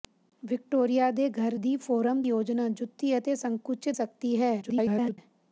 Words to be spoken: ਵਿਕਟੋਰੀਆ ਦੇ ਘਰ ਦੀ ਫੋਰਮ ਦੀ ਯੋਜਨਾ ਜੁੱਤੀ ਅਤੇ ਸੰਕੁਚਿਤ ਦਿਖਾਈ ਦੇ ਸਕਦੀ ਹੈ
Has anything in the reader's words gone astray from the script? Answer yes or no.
yes